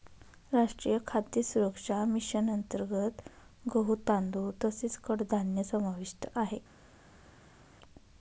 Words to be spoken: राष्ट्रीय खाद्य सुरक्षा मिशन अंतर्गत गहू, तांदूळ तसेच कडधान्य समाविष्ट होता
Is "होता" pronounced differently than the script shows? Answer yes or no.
yes